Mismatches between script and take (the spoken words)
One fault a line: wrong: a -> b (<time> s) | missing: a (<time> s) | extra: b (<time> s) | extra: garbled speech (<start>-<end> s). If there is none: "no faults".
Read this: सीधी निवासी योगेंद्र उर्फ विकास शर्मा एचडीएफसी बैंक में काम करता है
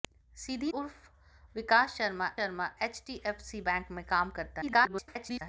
missing: निवासी योगेंद्र (0.7 s)
extra: शर्मा (2.3 s)
extra: garbled speech (4.6-5.4 s)